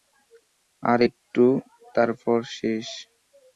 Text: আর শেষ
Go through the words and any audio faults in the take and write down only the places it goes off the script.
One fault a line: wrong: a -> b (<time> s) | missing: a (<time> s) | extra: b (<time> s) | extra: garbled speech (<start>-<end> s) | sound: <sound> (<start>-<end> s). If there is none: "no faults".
extra: একটু তারপর (1.1 s)